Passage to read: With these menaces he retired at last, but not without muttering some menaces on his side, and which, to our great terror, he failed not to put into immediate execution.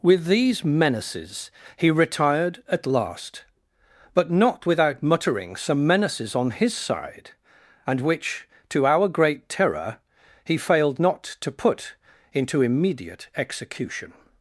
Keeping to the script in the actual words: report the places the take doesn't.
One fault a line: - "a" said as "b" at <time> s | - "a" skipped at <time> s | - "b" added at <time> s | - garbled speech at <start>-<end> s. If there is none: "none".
none